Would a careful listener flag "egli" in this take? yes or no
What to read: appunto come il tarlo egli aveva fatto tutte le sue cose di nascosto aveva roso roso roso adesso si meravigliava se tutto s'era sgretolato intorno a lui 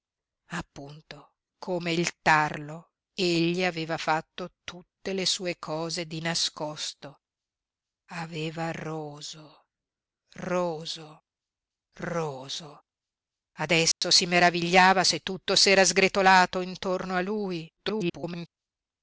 no